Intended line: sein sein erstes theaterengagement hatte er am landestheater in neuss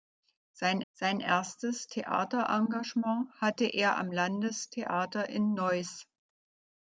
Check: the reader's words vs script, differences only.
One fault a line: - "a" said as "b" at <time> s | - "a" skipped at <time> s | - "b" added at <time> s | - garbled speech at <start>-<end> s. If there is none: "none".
none